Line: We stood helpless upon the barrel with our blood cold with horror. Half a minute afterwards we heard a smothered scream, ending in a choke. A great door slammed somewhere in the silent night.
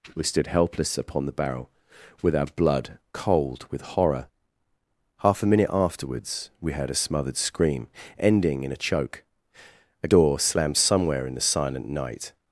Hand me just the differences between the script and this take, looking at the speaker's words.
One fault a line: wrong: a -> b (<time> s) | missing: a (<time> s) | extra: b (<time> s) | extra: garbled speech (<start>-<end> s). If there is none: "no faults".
missing: great (10.1 s)